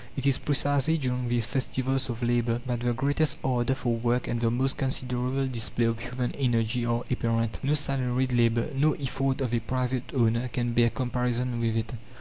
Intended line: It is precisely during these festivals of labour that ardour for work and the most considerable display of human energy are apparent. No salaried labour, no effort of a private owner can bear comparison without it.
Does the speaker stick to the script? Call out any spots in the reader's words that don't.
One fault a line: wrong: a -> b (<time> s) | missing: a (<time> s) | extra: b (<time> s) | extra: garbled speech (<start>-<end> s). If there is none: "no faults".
extra: the greatest (2.8 s)
wrong: without -> with (11.6 s)